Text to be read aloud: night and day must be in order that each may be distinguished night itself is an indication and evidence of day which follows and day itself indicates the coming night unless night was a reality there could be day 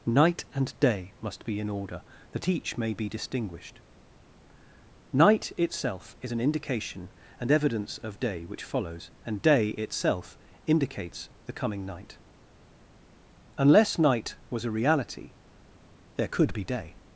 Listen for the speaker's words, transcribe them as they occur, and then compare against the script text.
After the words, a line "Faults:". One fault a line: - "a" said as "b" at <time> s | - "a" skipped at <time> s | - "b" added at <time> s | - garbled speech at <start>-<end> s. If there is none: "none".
night and day must be in order that each may be distinguished night itself is an indication and evidence of day which follows and day itself indicates the coming night unless night was a reality there could be day
Faults:
none